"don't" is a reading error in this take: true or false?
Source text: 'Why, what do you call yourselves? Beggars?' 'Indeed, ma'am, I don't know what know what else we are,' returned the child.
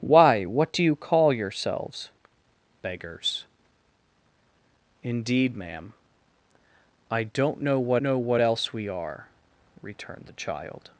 false